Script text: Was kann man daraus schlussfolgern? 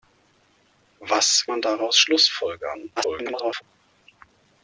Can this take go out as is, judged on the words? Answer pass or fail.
fail